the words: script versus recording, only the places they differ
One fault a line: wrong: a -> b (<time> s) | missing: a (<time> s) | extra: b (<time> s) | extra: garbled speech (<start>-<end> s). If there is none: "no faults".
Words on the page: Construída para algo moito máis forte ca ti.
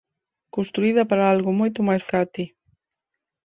missing: forte (2.0 s)